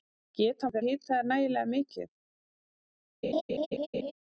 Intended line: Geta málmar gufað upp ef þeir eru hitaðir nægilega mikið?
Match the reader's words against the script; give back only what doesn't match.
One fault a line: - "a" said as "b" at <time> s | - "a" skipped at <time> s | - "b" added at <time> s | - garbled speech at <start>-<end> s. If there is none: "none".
- "málmar gufað upp" skipped at 0.7 s
- "eru" skipped at 0.8 s